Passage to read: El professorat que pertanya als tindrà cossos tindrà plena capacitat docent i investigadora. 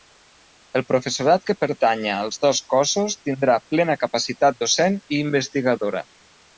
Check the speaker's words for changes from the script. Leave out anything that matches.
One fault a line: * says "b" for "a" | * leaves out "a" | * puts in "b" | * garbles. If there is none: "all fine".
* says "dos" for "tindrà"